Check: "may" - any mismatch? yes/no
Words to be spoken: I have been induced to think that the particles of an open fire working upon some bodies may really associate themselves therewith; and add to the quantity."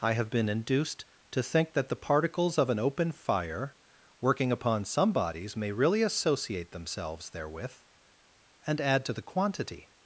no